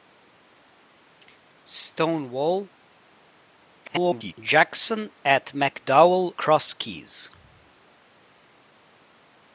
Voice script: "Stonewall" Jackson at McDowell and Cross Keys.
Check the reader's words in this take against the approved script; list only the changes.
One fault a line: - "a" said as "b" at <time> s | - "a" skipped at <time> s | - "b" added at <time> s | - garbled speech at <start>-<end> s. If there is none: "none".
- garbled speech at 3.8-4.3 s
- "and" skipped at 6.3 s